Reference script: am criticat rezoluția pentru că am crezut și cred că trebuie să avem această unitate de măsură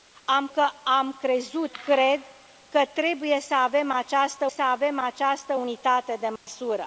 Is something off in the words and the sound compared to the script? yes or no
yes